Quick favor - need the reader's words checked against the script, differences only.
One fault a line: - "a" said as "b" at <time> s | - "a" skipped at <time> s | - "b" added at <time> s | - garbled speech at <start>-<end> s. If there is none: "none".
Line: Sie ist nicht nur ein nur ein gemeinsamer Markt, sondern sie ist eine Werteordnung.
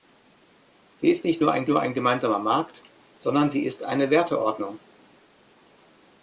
none